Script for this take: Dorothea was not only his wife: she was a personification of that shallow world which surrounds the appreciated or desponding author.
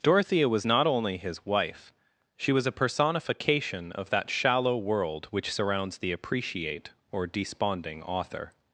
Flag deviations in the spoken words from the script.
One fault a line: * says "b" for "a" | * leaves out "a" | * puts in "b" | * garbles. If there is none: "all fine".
* says "appreciate" for "appreciated"